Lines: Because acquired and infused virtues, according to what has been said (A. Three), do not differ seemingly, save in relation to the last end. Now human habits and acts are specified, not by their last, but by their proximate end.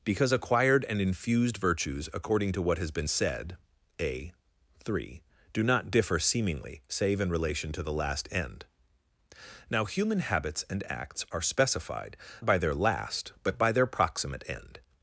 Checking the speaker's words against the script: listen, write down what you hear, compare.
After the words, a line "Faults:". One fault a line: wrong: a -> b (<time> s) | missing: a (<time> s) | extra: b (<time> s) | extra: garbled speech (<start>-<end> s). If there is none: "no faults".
Because acquired and infused virtues, according to what has been said (A. Three), do not differ seemingly, save in relation to the last end. Now human habits and acts are specified, by their last, but by their proximate end.
Faults:
missing: not (12.2 s)